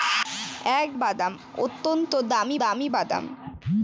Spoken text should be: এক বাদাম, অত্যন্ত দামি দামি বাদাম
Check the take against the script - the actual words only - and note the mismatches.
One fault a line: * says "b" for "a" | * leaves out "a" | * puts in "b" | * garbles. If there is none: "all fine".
all fine